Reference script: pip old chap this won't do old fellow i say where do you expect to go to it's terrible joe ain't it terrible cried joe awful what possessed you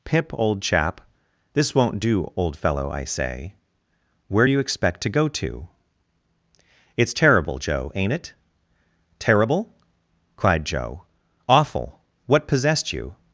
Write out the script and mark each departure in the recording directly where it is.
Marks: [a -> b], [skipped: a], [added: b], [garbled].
pip old chap this won't do old fellow i say where do you expect to go to it's terrible joe ain't it terrible cried joe awful what possessed you